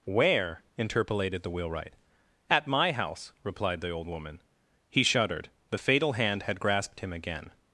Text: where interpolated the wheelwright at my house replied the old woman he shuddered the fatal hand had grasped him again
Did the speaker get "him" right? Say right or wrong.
right